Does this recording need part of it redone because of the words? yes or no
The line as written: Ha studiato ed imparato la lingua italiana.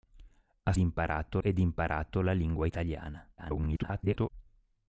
yes